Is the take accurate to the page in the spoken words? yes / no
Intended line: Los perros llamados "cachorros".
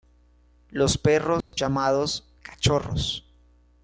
yes